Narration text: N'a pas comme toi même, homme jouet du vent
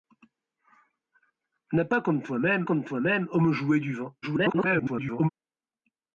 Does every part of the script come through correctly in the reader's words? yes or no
no